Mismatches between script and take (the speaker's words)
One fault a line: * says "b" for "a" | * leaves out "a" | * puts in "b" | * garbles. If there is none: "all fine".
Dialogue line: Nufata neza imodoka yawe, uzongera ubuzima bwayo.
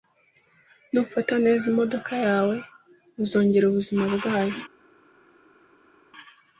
all fine